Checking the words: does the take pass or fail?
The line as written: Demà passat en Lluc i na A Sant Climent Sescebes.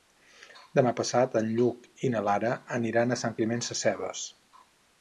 fail